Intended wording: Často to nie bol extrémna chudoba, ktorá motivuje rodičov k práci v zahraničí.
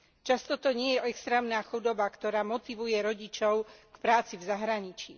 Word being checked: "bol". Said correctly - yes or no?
no